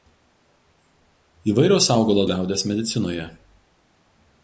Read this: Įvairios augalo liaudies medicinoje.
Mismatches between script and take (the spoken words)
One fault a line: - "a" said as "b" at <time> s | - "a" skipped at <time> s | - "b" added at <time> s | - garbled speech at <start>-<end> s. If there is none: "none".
none